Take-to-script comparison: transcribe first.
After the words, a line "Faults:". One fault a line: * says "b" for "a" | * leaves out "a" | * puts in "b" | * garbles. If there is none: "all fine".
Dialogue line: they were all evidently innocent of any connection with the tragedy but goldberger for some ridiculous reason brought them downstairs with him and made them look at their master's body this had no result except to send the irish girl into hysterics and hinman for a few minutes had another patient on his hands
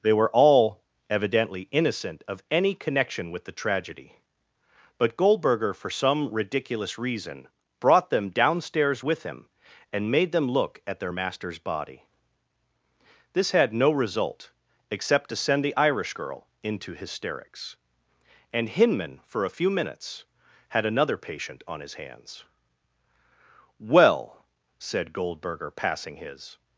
they were all evidently innocent of any connection with the tragedy but goldberger for some ridiculous reason brought them downstairs with him and made them look at their master's body this had no result except to send the irish girl into hysterics and hinman for a few minutes had another patient on his hands well said goldberger passing his
Faults:
* puts in "well said goldberger passing his"